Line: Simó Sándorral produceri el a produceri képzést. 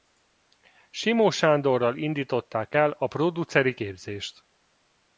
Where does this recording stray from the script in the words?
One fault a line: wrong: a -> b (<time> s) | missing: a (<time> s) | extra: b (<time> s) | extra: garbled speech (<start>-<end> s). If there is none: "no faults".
wrong: produceri -> indították (2.0 s)